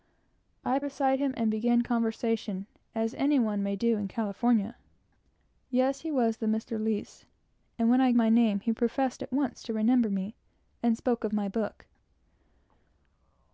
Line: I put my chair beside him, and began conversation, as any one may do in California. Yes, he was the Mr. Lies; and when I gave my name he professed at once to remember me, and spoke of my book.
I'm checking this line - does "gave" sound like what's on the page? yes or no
no